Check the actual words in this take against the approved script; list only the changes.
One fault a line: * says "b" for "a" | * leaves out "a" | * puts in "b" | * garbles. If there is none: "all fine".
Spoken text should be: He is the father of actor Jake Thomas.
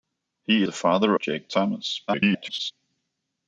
* leaves out "is"
* leaves out "of actor"
* garbles